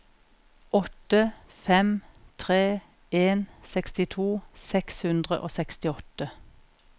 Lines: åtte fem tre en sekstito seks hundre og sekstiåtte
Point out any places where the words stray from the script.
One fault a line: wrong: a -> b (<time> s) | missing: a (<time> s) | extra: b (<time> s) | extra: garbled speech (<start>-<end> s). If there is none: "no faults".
no faults